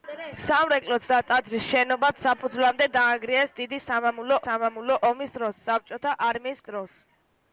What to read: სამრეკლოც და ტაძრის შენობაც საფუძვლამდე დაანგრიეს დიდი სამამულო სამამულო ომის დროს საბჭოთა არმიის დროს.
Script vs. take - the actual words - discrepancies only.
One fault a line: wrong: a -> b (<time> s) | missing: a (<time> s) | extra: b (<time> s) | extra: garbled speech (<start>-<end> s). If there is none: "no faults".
no faults